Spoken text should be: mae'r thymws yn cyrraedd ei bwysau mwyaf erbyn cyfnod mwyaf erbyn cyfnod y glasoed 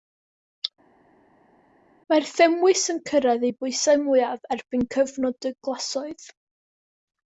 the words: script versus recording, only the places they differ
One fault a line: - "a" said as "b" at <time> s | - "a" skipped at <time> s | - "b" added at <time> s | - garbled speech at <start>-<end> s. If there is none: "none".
- "mwyaf erbyn cyfnod" skipped at 5.5 s